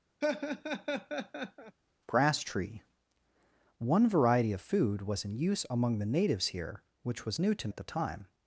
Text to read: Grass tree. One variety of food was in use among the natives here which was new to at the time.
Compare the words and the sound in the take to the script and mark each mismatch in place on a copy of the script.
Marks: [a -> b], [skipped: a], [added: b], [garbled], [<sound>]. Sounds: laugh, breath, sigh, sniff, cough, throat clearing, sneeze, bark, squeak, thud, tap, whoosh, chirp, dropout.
[laugh] Grass tree. One variety of food was in use among the natives here which was new to at the time.